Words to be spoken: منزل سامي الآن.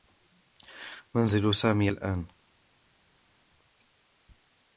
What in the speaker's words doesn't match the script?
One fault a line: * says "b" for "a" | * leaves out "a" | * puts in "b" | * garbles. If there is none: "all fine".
all fine